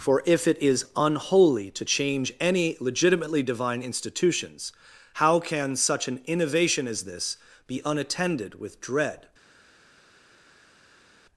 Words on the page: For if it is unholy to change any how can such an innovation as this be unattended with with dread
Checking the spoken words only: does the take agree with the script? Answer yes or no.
no